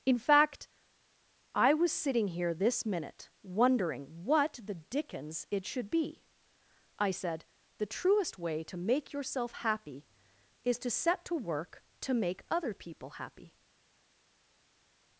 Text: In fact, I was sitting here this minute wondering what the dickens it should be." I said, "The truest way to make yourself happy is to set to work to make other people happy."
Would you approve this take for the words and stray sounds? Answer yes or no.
yes